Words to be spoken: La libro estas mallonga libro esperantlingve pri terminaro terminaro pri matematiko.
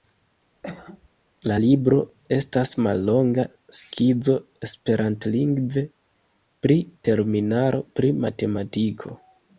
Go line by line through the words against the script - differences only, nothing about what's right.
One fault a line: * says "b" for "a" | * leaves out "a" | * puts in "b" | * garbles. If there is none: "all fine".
* says "skizo" for "libro"
* leaves out "terminaro"